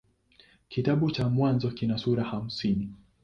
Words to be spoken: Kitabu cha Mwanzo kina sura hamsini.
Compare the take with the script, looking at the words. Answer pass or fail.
pass